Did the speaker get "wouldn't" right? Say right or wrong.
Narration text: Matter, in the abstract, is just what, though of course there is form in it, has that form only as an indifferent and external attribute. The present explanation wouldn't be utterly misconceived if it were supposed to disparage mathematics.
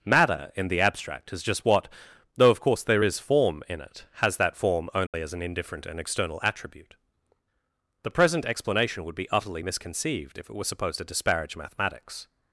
wrong